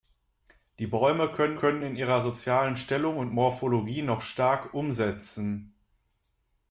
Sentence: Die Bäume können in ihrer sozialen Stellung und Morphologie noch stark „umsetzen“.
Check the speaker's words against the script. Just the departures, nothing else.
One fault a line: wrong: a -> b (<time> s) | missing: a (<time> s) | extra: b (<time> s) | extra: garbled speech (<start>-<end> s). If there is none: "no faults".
extra: können (1.5 s)